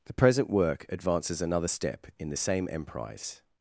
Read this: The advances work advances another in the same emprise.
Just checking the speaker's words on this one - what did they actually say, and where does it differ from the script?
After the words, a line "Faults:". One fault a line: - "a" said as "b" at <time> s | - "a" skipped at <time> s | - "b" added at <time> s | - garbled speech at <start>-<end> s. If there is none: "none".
The present work advances another step in the same emprise.
Faults:
- "advances" said as "present" at 0.1 s
- "step" added at 1.6 s